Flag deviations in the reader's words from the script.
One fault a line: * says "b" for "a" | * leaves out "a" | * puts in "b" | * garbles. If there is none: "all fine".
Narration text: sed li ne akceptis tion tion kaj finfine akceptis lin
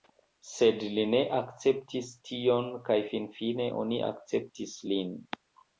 * leaves out "tion"
* puts in "oni"